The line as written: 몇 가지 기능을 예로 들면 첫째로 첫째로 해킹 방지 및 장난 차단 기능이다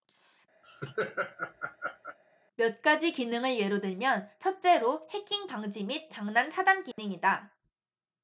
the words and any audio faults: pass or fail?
fail